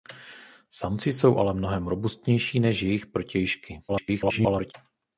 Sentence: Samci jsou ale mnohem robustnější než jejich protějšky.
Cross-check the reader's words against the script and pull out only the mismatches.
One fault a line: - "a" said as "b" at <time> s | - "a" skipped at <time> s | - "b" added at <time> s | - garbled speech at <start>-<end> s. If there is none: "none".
- garbled speech at 3.9-4.7 s